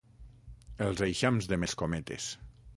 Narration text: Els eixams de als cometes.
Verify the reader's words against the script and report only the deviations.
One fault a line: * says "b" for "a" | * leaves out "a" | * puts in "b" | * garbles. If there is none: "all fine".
all fine